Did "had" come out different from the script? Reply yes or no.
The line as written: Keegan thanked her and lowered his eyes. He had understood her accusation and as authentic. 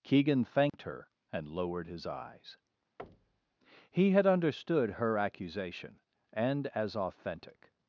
no